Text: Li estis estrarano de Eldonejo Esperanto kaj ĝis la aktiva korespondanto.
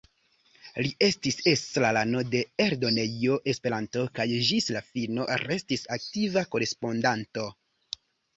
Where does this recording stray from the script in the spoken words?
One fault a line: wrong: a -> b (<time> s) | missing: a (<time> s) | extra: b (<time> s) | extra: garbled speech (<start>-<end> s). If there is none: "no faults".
extra: fino restis (4.9 s)